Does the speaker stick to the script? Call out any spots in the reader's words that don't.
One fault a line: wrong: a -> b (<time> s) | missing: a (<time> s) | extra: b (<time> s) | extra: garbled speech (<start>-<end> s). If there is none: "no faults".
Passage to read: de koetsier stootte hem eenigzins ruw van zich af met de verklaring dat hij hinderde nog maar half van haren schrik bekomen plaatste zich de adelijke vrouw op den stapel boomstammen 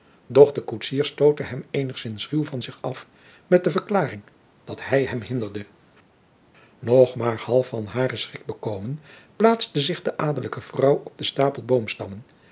extra: hem (5.0 s)